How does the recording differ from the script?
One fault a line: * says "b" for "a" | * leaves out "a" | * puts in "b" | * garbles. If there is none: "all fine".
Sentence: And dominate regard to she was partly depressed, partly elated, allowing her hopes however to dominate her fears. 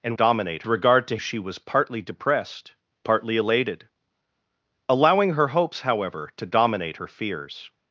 all fine